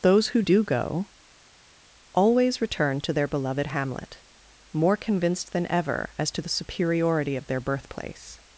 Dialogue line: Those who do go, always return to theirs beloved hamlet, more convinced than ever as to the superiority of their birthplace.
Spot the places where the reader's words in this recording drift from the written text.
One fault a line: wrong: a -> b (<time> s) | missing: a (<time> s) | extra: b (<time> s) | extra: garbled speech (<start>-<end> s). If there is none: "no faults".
wrong: theirs -> their (3.1 s)